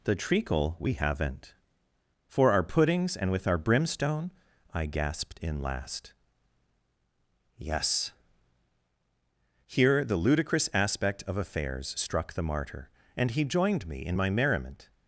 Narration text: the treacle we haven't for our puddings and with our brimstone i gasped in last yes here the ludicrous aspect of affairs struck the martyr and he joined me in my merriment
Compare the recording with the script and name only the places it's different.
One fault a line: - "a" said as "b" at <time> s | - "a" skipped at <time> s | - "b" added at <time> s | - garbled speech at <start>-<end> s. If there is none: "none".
none